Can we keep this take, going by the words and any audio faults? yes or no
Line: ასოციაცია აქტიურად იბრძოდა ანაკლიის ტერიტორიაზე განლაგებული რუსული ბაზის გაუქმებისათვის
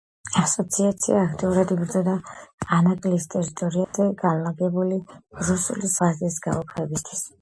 no